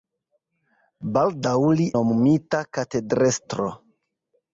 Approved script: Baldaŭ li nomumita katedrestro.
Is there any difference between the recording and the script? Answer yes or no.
no